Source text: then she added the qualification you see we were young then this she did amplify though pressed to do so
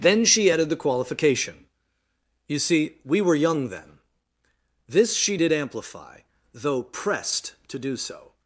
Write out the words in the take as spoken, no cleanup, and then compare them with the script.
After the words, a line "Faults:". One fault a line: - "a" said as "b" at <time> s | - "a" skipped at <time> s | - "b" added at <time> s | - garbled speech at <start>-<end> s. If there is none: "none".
then she added the qualification you see we were young then this she did amplify though pressed to do so
Faults:
none